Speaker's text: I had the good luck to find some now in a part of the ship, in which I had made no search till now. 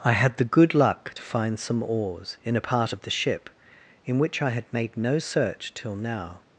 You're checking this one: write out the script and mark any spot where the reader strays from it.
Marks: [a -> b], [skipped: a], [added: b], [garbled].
I had the good luck to find some [now -> oars] in a part of the ship, in which I had made no search till now.